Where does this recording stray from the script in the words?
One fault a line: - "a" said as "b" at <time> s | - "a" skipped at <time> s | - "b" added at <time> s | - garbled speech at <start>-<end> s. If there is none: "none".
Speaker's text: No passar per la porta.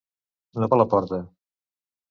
- "passar" skipped at 0.7 s